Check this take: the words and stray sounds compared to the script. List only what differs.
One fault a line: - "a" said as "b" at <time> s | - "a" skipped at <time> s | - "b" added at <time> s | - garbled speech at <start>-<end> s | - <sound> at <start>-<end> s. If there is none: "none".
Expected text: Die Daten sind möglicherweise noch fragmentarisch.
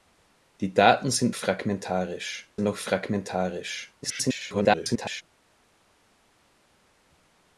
- "möglicherweise" said as "fragmentarisch" at 1.3 s
- garbled speech at 4.0-5.2 s